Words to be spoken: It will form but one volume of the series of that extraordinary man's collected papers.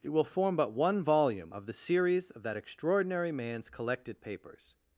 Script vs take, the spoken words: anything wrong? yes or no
no